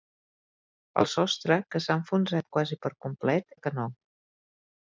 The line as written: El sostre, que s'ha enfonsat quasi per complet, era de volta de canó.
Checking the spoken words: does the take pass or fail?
fail